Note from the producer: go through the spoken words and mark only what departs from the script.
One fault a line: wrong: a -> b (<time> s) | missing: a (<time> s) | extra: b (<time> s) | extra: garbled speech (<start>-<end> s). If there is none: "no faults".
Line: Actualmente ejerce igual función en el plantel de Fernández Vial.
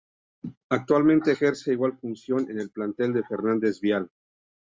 no faults